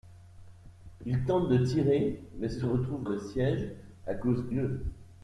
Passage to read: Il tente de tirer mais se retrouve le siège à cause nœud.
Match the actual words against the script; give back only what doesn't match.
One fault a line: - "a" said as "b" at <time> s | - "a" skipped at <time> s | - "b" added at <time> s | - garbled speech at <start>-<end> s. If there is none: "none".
none